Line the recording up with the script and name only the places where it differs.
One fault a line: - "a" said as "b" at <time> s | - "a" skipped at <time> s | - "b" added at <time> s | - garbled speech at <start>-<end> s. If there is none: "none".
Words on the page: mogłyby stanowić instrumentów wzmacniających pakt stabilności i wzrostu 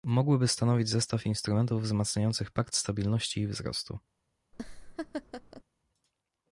- "zestaw" added at 0.9 s